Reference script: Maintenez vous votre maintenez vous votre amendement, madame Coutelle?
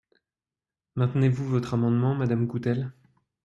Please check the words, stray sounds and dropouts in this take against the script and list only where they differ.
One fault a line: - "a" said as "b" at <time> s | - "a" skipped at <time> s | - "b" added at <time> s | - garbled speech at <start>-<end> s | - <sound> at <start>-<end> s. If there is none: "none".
- "maintenez vous votre" skipped at 1.8 s